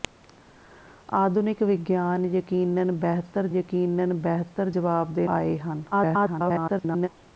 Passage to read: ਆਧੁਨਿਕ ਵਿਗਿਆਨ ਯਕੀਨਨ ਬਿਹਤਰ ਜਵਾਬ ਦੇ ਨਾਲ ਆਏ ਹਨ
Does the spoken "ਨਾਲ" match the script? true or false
false